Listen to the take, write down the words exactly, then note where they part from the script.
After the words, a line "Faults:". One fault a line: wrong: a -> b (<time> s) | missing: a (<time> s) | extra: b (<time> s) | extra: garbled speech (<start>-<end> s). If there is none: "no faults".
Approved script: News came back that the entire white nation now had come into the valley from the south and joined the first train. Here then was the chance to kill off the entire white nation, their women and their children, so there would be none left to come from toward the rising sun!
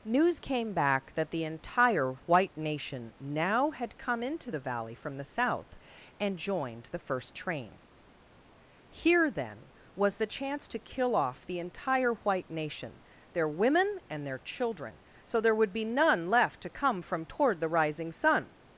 News came back that the entire white nation now had come into the valley from the south and joined the first train. Here then was the chance to kill off the entire white nation, their women and their children, so there would be none left to come from toward the rising sun!
Faults:
no faults